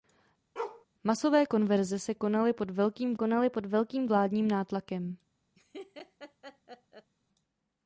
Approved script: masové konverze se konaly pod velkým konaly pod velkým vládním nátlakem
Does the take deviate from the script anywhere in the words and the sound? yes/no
yes